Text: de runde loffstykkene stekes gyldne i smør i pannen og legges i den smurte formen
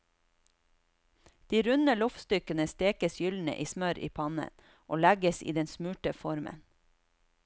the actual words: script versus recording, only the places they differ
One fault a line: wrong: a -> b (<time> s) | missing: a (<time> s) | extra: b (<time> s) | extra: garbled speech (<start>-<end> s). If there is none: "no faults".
no faults